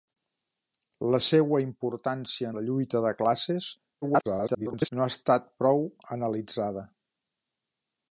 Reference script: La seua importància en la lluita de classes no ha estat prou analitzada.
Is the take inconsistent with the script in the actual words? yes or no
yes